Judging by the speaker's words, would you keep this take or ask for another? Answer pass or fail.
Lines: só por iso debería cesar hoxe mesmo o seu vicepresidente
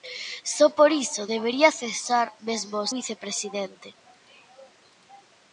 fail